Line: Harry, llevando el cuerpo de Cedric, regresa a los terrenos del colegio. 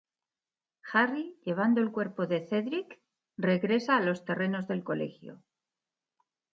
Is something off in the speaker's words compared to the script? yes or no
no